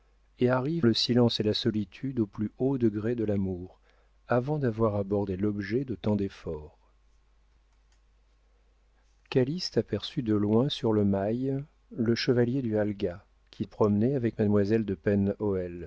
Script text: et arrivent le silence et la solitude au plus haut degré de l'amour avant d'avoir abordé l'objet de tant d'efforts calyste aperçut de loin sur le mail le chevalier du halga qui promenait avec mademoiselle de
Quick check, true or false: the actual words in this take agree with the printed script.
true